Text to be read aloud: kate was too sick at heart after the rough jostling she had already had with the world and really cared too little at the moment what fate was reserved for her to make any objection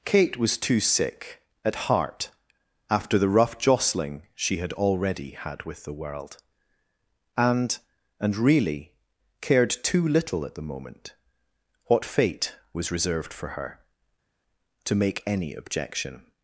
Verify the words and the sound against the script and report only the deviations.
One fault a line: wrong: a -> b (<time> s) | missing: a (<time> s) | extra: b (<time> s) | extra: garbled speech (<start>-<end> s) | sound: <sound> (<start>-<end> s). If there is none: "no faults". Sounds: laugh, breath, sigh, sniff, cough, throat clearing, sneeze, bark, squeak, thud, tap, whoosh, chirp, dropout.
extra: and (8.2 s)